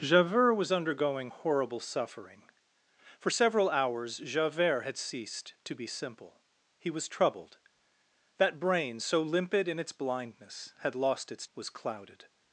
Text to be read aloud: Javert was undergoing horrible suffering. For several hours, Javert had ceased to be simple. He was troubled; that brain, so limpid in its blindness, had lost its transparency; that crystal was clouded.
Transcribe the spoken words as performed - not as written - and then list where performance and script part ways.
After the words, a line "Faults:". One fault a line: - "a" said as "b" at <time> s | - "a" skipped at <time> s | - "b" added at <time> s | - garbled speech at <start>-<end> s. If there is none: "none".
Javert was undergoing horrible suffering. For several hours, Javert had ceased to be simple. He was troubled; that brain, so limpid in its blindness, had lost its was clouded.
Faults:
- "transparency that crystal" skipped at 11.5 s